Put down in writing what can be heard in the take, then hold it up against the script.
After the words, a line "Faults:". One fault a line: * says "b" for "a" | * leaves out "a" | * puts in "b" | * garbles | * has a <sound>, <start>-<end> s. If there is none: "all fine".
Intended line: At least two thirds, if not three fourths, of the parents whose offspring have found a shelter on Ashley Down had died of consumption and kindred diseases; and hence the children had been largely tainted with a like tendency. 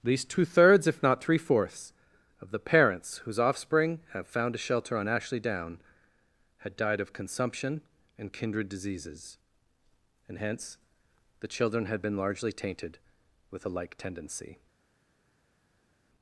At least two thirds, if not three fourths, of the parents whose offspring have found a shelter on Ashley Down had died of consumption and kindred diseases; and hence the children had been largely tainted with a like tendency.
Faults:
all fine